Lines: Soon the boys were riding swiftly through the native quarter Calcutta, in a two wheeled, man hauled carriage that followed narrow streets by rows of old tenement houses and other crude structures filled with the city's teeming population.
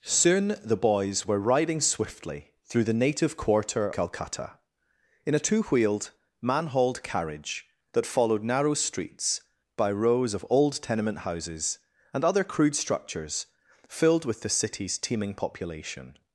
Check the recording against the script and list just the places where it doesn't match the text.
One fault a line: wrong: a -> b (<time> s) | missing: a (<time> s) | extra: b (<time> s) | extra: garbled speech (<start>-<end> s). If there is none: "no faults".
no faults